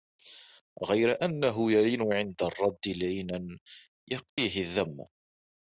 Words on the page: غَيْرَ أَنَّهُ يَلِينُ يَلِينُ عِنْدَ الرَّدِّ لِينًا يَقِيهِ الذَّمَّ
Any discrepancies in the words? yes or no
yes